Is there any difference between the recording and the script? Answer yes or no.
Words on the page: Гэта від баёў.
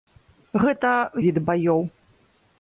no